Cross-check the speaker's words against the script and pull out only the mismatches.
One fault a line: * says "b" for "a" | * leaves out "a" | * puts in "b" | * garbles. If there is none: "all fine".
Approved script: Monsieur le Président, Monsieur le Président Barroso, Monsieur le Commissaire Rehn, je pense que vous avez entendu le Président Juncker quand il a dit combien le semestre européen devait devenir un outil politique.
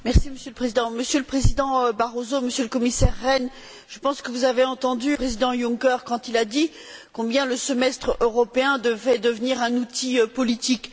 * leaves out "le"